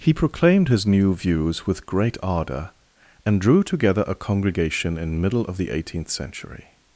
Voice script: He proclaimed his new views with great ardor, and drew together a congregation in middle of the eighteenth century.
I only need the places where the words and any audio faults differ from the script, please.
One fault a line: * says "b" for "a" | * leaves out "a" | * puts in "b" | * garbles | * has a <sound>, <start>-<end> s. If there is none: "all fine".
all fine